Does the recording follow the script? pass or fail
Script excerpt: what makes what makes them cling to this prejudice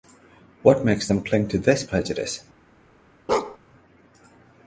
fail